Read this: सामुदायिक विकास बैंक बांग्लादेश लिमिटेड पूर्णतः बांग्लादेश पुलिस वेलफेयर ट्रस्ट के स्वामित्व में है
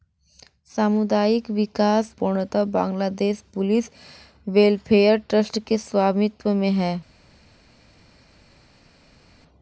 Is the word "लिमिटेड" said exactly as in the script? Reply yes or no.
no